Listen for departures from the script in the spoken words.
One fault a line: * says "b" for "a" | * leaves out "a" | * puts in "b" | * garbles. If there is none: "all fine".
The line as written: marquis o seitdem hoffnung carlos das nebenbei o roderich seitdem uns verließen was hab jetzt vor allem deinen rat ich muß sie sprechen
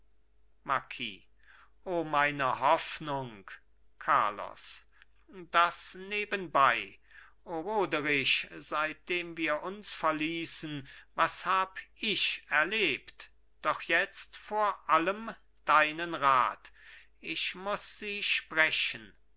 * says "meine" for "seitdem"
* puts in "wir"
* puts in "ich erlebt doch"